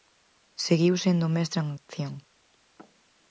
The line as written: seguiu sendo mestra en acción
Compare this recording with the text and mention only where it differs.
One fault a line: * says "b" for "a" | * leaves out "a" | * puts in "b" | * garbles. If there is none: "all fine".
all fine